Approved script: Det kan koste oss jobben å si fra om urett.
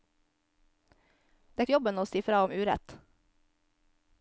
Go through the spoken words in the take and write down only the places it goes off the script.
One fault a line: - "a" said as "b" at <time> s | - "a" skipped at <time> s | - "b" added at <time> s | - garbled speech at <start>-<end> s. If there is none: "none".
- "kan koste oss" skipped at 1.6 s